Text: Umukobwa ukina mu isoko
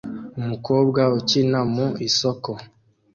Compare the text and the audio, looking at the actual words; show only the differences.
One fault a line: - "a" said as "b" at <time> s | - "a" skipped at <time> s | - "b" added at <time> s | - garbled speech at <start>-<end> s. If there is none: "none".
none